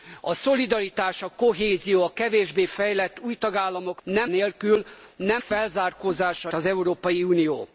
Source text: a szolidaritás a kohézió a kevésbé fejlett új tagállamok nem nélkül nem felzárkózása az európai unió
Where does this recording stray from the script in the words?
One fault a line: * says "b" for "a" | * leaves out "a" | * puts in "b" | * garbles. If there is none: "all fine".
all fine